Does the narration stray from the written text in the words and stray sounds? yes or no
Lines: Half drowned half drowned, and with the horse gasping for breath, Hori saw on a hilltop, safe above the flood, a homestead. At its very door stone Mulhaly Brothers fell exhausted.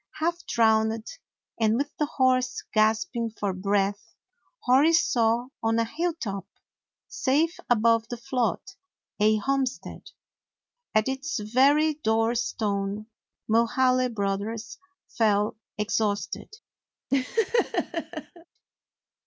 yes